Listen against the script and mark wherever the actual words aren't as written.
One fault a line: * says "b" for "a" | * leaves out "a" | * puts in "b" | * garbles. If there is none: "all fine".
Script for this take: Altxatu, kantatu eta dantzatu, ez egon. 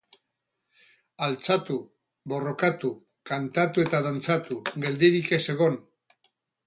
* puts in "borrokatu"
* puts in "geldirik"